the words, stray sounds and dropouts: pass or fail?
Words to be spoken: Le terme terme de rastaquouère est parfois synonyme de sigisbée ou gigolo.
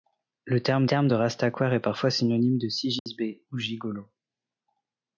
fail